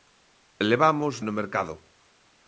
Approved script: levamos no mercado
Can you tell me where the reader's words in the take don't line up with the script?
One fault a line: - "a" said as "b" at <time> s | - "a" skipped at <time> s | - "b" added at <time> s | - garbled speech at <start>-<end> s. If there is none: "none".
none